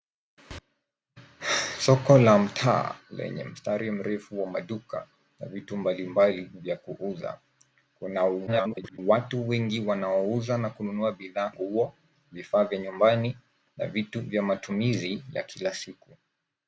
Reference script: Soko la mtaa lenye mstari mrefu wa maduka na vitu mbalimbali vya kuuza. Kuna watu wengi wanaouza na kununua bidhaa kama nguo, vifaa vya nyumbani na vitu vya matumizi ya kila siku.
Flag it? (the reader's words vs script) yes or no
yes